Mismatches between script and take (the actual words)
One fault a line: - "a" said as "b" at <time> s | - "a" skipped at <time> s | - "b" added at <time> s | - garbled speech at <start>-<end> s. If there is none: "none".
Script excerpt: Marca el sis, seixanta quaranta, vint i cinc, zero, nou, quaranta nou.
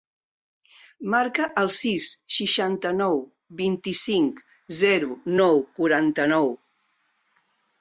- "quaranta" said as "nou" at 3.0 s